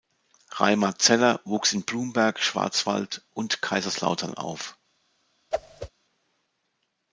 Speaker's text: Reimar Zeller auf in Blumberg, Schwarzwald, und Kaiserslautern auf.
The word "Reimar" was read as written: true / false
true